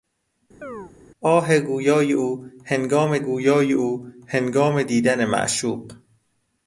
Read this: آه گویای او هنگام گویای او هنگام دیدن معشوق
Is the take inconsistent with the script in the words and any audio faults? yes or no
yes